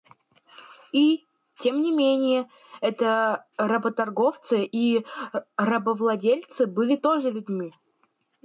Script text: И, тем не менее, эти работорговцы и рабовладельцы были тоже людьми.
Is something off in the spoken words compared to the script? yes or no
no